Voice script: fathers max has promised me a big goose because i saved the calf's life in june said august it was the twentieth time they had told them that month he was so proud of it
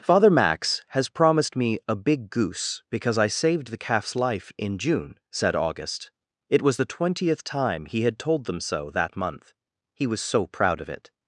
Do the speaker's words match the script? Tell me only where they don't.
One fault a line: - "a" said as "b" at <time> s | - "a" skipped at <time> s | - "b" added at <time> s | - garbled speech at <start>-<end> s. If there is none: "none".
- "fathers" said as "father" at 0.0 s
- "they" said as "he" at 7.8 s
- "so" added at 8.6 s